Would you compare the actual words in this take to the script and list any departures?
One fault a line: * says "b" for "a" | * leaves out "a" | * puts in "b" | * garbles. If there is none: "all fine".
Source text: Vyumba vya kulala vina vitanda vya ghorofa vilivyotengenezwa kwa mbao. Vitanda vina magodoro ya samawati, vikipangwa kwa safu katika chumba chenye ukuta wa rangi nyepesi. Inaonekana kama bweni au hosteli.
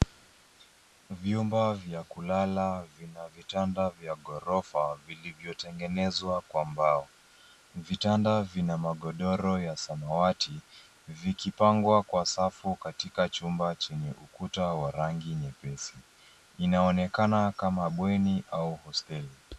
all fine